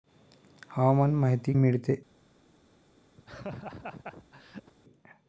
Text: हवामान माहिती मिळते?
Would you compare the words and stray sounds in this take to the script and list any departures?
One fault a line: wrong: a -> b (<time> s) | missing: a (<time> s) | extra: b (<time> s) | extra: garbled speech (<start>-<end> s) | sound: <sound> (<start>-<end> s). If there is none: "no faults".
sound: laugh (3.2-4.7 s)